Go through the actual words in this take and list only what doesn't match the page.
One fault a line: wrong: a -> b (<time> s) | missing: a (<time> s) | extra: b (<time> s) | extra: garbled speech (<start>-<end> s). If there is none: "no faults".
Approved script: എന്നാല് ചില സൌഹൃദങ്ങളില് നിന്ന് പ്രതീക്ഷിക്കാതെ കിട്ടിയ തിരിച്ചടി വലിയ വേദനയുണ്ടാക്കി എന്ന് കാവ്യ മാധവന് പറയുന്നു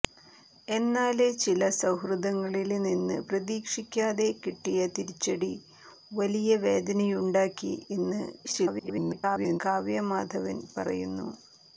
extra: garbled speech (8.4-9.6 s)